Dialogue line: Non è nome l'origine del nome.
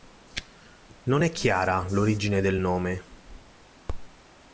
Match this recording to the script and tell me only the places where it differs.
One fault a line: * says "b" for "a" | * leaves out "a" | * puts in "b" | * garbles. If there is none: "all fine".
* says "chiara" for "nome"